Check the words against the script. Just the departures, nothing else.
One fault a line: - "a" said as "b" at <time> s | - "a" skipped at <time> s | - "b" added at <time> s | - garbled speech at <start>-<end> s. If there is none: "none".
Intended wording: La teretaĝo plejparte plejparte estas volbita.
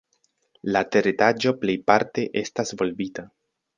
- "plejparte" skipped at 2.2 s